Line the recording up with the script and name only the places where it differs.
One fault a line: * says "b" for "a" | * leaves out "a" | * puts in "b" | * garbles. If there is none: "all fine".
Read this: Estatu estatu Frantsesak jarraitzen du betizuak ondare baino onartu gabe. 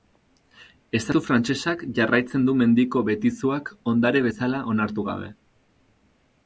* leaves out "estatu"
* puts in "mendiko"
* says "bezala" for "baino"